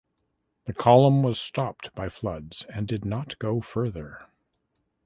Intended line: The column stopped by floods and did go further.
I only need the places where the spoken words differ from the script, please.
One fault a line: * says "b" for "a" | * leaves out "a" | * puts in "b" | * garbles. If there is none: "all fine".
* puts in "was"
* puts in "not"